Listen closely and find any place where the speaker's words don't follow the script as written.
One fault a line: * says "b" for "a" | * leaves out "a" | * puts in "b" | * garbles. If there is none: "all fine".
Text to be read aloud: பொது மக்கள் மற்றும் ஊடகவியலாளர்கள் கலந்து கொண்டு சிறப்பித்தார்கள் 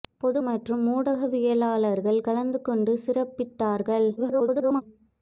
* leaves out "மக்கள்"
* garbles